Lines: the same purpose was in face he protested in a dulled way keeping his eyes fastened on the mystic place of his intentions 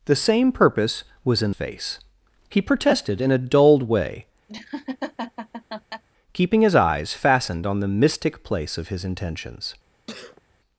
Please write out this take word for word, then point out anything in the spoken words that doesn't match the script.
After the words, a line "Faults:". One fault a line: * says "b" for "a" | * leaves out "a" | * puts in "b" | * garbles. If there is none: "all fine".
the same purpose was in face he protested in a dulled way keeping his eyes fastened on the mystic place of his intentions
Faults:
all fine